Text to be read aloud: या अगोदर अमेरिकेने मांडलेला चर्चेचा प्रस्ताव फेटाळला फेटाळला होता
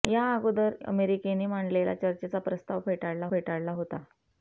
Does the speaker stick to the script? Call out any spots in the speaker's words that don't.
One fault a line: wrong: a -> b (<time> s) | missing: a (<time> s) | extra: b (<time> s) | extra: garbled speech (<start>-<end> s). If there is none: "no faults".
no faults